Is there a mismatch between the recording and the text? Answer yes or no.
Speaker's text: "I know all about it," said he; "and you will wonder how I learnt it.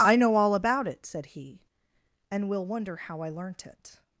yes